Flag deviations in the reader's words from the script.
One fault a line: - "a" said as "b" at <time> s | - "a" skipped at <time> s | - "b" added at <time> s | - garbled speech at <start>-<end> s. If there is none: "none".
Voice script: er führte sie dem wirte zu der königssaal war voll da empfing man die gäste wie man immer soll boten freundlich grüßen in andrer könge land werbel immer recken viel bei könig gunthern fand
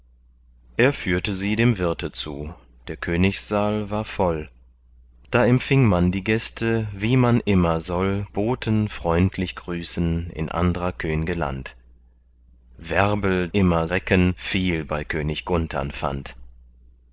none